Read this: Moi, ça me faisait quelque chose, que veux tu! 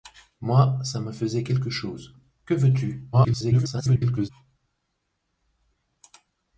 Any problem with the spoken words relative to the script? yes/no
yes